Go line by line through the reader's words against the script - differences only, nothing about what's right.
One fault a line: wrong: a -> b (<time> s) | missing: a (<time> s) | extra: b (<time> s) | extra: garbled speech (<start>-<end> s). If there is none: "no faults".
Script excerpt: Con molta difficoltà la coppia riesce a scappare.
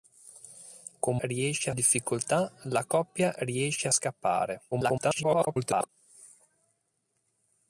wrong: molta -> riesce (1.2 s)
extra: garbled speech (4.7-5.9 s)